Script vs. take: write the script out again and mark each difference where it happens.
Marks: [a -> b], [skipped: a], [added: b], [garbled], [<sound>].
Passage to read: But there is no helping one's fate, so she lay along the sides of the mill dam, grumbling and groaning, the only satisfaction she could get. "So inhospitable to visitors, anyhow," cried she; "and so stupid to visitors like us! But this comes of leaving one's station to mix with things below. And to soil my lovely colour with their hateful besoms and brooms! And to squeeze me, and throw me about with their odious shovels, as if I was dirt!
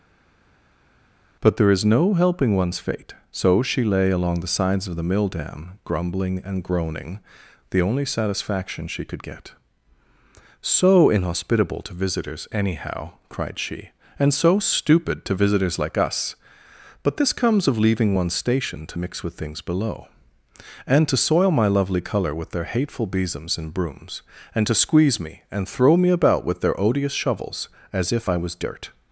But there is no helping one's fate, so she lay along the sides of the mill dam, grumbling and groaning, the only satisfaction she could get. "So inhospitable to visitors, anyhow," cried she; "and so stupid to visitors like us! But this comes of leaving one's station to mix with things below. And to soil my lovely colour with their hateful besoms and brooms! And to squeeze me, and throw me about with their odious shovels, as if I was dirt!